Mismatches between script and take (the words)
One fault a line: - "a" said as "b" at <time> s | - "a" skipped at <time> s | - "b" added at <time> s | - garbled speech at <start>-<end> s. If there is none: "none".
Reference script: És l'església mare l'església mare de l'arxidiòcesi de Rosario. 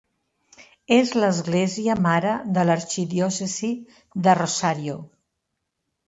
- "l'església mare" skipped at 2.3 s